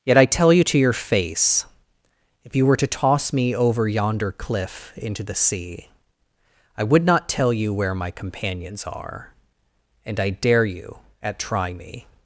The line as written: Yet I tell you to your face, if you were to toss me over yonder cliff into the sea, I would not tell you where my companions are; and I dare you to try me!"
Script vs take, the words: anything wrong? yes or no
yes